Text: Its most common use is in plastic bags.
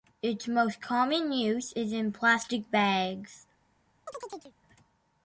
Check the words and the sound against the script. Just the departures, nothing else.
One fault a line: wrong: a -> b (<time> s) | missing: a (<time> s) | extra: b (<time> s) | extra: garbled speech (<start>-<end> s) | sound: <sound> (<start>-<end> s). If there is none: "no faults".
sound: chirp (4.1-4.5 s)